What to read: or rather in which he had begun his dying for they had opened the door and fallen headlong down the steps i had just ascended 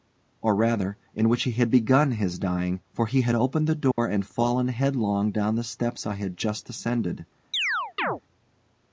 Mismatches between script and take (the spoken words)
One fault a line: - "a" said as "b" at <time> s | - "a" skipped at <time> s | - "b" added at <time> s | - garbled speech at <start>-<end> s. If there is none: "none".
- "they" said as "he" at 3.0 s